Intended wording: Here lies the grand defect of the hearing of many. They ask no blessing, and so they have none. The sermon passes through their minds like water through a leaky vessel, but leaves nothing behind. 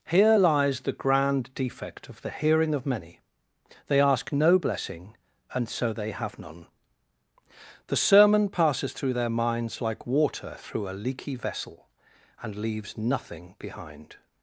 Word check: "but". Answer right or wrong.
wrong